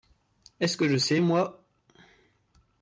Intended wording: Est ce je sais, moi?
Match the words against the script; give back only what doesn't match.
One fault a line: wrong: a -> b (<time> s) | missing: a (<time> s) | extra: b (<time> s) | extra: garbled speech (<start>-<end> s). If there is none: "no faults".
extra: que (0.8 s)